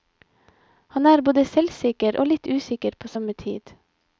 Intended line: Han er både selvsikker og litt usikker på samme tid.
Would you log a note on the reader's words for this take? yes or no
no